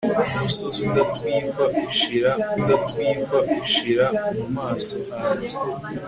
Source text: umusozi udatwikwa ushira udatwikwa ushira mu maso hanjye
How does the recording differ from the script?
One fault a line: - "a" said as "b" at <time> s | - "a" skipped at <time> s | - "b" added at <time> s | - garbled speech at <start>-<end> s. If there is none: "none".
none